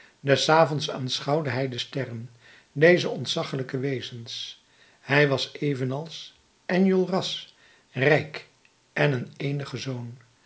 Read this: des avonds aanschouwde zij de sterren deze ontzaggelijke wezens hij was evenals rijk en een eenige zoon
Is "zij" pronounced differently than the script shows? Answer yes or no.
yes